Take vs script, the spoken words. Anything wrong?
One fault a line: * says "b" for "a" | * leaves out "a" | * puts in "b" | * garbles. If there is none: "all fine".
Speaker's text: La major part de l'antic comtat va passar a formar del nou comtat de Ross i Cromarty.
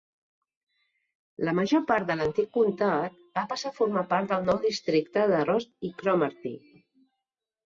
* puts in "part"
* says "districte" for "comtat"